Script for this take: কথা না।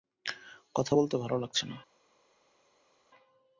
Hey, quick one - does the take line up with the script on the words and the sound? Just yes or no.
no